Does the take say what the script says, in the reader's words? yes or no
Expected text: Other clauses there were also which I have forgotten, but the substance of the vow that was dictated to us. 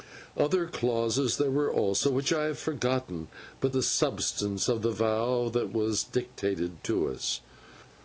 yes